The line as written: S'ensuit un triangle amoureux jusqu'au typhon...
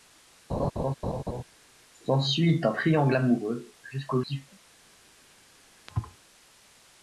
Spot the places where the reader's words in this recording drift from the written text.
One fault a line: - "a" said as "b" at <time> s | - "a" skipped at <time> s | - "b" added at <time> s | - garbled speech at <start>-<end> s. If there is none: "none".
none